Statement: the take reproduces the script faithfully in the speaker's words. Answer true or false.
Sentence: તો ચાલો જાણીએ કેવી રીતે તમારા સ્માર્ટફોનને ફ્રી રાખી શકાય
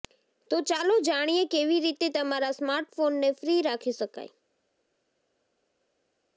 true